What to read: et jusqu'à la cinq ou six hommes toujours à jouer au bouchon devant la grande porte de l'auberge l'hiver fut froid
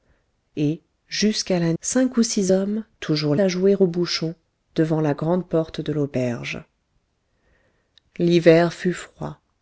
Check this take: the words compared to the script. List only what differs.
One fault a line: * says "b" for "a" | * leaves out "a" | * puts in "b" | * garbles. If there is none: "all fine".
all fine